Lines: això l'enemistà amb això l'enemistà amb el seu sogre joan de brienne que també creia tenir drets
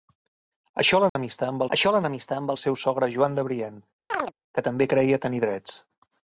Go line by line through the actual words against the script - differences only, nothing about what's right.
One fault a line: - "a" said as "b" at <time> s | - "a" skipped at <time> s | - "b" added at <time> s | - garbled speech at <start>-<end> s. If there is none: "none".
none